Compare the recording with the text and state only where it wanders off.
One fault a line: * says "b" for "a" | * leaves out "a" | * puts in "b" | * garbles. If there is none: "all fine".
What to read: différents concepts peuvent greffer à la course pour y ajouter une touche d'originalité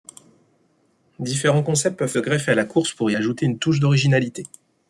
all fine